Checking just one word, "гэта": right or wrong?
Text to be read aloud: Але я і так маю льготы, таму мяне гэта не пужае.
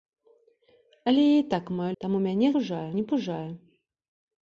wrong